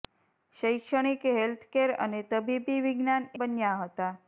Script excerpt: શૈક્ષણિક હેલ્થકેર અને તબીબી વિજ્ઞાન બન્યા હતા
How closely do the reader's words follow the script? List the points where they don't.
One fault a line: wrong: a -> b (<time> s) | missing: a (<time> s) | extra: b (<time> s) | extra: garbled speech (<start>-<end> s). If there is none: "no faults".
no faults